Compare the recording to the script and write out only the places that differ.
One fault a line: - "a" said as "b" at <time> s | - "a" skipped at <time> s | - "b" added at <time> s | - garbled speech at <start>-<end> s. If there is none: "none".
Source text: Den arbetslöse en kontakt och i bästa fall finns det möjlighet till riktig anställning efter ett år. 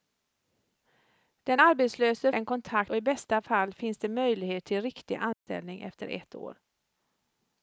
none